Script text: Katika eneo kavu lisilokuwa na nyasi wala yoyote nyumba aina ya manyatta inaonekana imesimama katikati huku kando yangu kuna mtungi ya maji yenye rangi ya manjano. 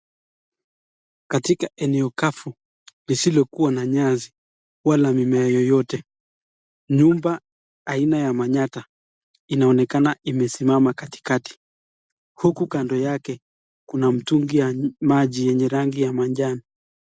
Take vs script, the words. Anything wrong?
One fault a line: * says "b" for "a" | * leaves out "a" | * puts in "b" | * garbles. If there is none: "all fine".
* puts in "mimea"
* says "yake" for "yangu"